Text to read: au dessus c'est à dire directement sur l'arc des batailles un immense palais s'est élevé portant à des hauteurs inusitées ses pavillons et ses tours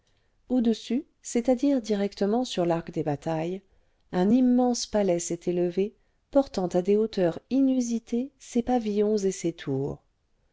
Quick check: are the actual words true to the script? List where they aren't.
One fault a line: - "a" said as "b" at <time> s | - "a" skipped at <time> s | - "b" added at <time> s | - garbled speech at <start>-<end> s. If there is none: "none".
none